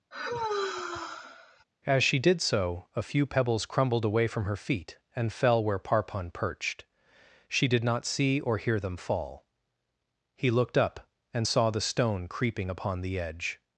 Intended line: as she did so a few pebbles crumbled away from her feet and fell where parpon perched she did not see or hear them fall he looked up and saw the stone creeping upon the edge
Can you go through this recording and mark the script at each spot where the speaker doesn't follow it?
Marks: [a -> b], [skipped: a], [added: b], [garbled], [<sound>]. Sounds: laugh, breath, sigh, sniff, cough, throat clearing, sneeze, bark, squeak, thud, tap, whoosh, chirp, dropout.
[sigh] as she did so a few pebbles crumbled away from her feet and fell where parpon perched she did not see or hear them fall he looked up and saw the stone creeping upon the edge